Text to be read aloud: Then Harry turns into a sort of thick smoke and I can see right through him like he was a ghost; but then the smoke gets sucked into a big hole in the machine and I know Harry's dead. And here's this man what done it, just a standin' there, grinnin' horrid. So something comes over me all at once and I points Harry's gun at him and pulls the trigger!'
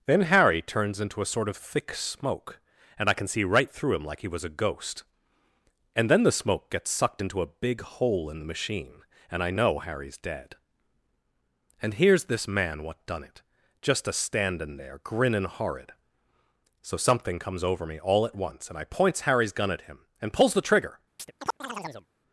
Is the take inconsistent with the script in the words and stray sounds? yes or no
yes